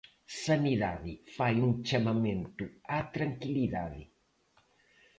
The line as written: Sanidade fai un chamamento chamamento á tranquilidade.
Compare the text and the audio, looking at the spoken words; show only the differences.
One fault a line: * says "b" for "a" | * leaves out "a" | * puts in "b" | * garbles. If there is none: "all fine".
* leaves out "chamamento"